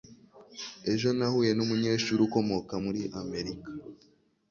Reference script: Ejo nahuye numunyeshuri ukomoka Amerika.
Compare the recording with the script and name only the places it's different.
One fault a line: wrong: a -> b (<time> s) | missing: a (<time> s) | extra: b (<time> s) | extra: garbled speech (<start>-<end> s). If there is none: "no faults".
extra: muri (2.8 s)